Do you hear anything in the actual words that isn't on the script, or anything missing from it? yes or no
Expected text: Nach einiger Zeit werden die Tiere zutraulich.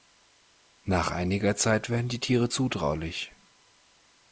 no